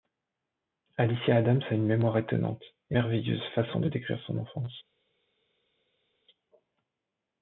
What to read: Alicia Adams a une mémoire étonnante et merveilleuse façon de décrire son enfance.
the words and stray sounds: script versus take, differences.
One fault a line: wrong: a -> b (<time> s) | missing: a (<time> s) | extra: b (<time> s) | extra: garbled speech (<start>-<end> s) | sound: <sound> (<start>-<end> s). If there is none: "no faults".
no faults